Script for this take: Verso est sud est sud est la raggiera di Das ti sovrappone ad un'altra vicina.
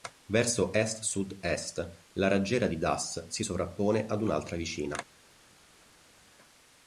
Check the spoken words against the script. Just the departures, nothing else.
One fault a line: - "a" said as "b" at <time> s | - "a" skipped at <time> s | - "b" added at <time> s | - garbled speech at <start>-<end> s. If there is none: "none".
- "sud est" skipped at 1.9 s
- "ti" said as "si" at 3.3 s